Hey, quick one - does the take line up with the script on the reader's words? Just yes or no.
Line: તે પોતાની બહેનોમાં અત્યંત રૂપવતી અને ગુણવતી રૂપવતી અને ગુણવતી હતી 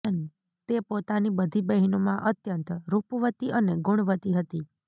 no